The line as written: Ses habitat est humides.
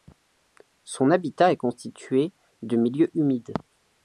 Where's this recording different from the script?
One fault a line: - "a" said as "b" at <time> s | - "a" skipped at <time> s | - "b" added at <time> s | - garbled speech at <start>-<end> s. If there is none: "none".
- "Ses" said as "Son" at 0.8 s
- "constitué de milieux" added at 1.6 s